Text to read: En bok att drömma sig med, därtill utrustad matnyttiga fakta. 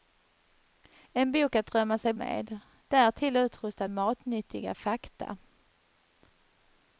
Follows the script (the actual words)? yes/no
yes